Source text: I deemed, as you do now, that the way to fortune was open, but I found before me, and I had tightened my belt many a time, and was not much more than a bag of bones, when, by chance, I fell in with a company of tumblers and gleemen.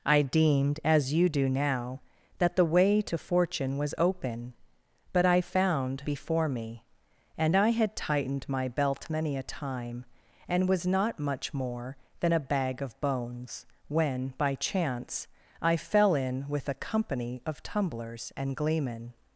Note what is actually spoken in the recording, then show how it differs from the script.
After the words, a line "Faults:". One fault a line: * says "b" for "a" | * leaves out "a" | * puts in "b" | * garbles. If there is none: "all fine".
I deemed, as you do now, that the way to fortune was open, but I found before me, and I had tightened my belt many a time, and was not much more than a bag of bones, when, by chance, I fell in with a company of tumblers and gleemen.
Faults:
all fine